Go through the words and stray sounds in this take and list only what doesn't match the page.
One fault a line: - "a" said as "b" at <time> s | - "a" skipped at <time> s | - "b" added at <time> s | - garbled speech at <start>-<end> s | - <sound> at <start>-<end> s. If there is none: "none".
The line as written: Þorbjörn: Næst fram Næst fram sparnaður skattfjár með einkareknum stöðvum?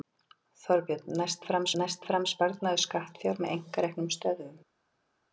none